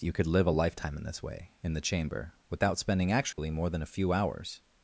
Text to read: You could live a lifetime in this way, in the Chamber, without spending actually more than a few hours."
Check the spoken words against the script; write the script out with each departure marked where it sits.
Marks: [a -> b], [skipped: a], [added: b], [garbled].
You could live a lifetime in this way, in the Chamber, without spending actually more than a few hours."